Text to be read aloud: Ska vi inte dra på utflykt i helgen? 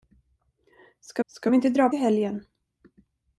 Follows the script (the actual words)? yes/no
no